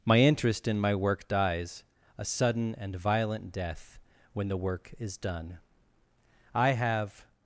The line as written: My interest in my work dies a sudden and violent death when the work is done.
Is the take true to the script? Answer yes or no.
no